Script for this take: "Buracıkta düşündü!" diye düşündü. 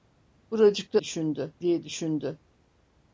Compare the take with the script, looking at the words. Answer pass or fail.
pass